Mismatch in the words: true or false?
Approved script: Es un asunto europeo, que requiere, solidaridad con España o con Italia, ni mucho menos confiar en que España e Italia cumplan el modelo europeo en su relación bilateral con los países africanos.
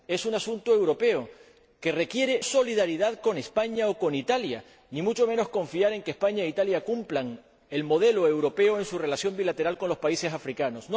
false